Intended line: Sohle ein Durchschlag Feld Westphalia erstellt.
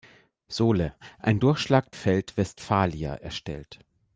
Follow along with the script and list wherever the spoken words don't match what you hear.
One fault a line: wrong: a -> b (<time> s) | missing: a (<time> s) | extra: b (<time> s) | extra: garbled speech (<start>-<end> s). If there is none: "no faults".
no faults